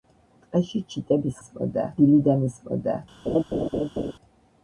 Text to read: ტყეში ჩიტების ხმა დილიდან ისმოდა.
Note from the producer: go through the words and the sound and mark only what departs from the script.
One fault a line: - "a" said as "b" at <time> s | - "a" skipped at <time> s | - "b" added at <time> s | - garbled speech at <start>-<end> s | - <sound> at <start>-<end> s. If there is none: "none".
- "ხმა" said as "ისმოდა" at 1.4 s
- laugh at 3.3-4.1 s